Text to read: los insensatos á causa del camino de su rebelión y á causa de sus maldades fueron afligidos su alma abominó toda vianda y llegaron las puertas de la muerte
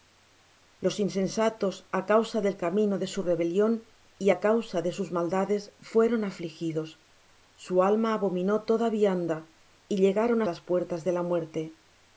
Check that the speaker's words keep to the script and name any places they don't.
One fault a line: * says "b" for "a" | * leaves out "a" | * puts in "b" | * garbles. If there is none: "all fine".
all fine